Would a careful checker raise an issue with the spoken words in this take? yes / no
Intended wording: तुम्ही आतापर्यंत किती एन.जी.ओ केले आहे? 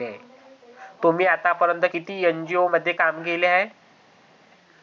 yes